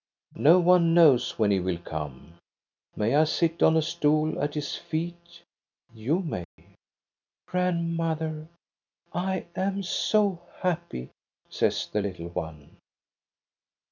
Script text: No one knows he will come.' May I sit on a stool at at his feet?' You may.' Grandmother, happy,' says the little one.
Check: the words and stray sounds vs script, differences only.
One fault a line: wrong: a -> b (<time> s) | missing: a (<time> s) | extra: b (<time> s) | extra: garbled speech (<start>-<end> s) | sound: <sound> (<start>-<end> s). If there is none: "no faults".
extra: when (1.4 s)
missing: at (4.5 s)
sound: dropout (6.4-6.6 s)
extra: I am so (9.1 s)